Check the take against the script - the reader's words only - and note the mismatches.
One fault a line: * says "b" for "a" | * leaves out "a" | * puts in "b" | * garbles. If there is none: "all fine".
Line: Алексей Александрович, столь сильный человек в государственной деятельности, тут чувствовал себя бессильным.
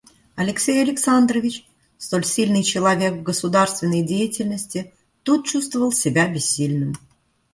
all fine